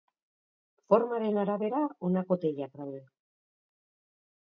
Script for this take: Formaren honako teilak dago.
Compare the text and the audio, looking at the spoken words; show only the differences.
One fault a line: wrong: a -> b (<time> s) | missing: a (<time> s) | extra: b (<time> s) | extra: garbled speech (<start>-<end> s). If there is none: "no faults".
extra: arabera (1.4 s)
wrong: dago -> daude (2.8 s)